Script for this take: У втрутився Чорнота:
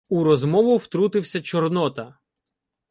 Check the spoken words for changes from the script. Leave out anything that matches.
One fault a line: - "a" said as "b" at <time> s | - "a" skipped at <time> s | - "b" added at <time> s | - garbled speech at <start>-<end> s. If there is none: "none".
- "розмову" added at 0.2 s